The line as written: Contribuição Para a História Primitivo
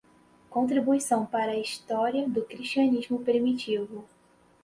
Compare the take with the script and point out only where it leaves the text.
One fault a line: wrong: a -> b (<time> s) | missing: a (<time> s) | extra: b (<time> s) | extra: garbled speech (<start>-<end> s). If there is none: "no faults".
extra: do Cristianismo (2.3 s)